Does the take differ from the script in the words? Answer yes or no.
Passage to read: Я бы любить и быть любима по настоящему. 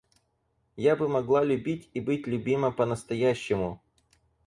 yes